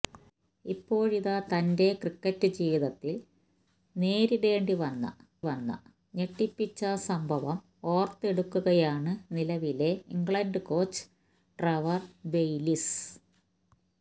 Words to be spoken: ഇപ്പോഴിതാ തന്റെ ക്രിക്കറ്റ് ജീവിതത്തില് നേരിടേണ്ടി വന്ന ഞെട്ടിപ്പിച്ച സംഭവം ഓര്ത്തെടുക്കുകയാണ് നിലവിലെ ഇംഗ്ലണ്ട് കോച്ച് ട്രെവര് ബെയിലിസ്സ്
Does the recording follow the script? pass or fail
fail